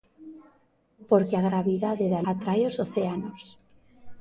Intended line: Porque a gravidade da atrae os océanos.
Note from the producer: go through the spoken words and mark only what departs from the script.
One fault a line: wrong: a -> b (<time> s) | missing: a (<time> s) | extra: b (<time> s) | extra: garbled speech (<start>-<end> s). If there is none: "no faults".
no faults